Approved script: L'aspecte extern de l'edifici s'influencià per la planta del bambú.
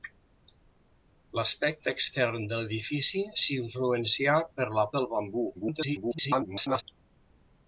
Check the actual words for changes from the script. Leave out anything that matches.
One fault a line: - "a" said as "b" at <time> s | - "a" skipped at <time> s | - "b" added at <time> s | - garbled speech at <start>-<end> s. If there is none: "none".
- "planta" skipped at 4.9 s
- garbled speech at 5.5-6.8 s